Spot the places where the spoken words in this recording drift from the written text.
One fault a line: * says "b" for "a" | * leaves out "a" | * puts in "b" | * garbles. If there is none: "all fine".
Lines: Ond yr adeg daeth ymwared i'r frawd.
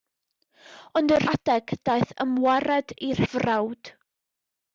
all fine